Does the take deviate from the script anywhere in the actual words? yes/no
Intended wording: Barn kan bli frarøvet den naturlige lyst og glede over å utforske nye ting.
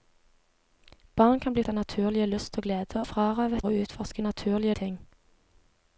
yes